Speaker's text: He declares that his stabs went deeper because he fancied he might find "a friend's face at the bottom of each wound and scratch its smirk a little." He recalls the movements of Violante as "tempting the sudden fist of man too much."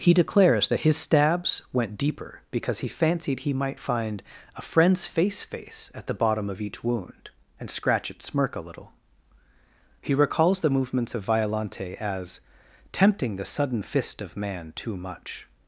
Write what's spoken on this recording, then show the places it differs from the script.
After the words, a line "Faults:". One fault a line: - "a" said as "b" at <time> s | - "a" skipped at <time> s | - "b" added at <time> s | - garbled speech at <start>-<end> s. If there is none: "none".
He declares that his stabs went deeper because he fancied he might find "a friend's face face at the bottom of each wound and scratch its smirk a little." He recalls the movements of Violante as "tempting the sudden fist of man too much."
Faults:
- "face" added at 5.4 s